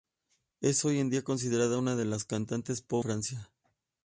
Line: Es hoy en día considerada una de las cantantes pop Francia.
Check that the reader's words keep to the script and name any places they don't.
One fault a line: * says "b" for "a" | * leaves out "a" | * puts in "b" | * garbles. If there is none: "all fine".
all fine